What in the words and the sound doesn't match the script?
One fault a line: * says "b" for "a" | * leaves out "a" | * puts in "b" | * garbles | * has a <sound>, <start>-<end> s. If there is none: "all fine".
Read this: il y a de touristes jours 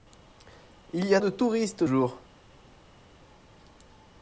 all fine